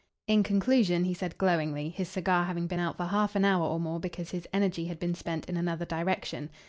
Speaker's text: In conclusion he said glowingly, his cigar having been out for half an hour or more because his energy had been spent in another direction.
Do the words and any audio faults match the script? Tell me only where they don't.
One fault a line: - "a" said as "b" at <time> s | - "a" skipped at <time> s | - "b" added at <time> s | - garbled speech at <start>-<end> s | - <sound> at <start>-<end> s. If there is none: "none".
none